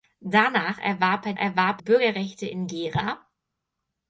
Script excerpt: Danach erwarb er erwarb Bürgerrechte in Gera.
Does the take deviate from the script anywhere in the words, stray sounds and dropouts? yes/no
no